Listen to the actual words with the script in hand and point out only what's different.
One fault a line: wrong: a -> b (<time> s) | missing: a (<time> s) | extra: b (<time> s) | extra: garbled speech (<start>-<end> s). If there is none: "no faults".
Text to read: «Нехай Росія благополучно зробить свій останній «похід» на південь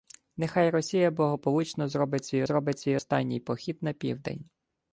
extra: зробить свій (2.4 s)